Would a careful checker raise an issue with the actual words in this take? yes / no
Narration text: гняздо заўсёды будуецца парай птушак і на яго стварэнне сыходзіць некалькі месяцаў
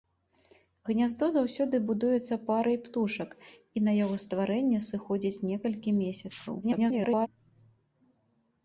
yes